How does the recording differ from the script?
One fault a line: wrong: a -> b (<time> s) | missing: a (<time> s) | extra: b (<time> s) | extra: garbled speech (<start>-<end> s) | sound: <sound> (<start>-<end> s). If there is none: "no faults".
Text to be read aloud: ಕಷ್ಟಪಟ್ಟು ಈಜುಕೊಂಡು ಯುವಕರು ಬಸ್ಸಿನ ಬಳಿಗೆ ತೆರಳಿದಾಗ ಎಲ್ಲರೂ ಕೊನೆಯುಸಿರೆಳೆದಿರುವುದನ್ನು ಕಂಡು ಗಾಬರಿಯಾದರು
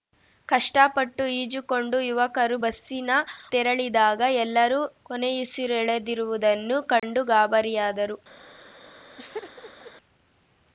missing: ಬಳಿಗೆ (3.1 s)
sound: dropout (7.0-7.0 s)
sound: laugh (9.2-9.9 s)